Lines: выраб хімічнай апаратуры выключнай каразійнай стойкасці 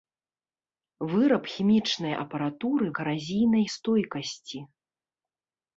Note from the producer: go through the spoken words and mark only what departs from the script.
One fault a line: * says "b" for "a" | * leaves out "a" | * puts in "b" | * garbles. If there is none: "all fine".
* leaves out "выключнай"